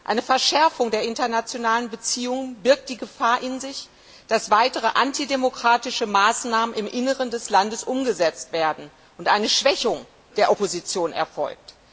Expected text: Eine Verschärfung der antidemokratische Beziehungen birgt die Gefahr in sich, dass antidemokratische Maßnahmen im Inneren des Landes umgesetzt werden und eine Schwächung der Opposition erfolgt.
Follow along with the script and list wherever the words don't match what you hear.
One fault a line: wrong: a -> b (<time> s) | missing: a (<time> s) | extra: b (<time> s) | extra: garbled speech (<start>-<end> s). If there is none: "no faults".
wrong: antidemokratische -> internationalen (1.0 s)
extra: weitere (4.5 s)